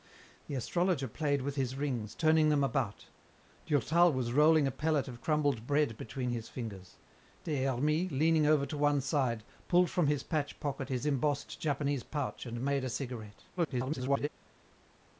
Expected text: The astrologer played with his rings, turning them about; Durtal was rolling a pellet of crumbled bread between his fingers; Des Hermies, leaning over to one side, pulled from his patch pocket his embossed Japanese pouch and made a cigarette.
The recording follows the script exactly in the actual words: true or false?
false